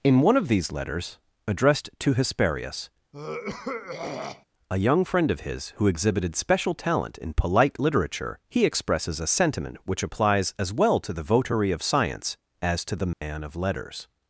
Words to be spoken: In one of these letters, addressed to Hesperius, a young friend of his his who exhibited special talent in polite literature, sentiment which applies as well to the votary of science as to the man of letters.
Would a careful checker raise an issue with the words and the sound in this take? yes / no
yes